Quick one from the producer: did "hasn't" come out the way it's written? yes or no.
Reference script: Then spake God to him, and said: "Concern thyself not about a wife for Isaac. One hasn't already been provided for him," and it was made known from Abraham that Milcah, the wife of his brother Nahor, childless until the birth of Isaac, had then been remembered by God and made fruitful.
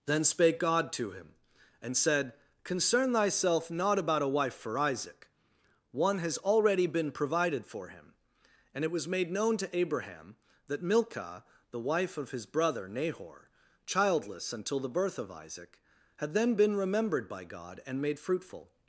no